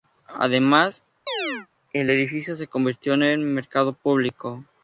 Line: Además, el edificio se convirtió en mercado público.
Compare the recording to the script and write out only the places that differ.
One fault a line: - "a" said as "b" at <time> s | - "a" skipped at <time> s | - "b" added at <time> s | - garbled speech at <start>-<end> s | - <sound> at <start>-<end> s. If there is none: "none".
- chirp at 1.3-1.7 s